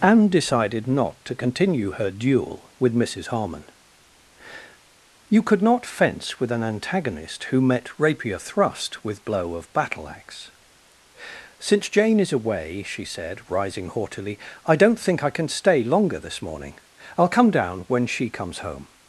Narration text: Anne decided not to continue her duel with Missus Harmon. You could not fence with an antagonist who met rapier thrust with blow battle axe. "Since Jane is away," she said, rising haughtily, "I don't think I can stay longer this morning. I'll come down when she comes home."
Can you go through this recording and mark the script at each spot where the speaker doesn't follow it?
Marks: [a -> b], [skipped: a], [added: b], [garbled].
Anne decided not to continue her duel with Missus Harmon. You could not fence with an antagonist who met rapier thrust with blow [added: of] battle axe. "Since Jane is away," she said, rising haughtily, "I don't think I can stay longer this morning. I'll come down when she comes home."